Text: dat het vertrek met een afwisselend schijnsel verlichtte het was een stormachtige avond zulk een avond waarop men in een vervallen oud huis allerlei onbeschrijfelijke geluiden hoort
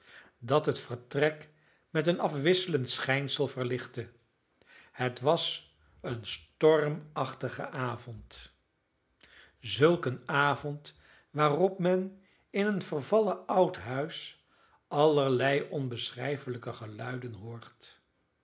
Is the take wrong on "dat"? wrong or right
right